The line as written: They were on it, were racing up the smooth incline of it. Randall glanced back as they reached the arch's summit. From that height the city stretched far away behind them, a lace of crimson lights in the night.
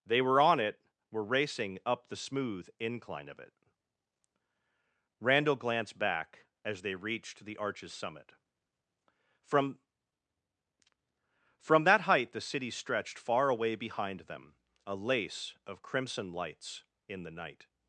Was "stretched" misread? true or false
false